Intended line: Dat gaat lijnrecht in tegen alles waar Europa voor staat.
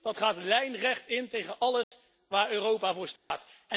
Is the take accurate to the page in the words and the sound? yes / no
no